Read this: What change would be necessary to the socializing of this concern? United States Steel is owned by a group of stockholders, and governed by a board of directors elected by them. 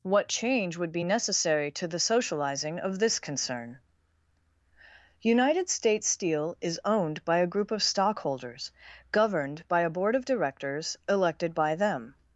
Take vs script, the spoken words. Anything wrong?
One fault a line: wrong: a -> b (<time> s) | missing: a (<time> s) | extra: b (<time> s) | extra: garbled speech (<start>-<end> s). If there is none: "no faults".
missing: and (8.7 s)